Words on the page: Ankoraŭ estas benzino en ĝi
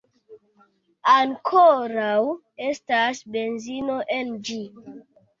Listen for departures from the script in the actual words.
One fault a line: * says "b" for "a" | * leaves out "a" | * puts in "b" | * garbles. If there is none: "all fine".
all fine